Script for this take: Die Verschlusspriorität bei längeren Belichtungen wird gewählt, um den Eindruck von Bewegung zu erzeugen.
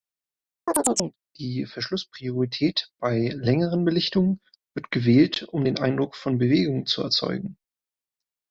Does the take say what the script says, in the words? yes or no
yes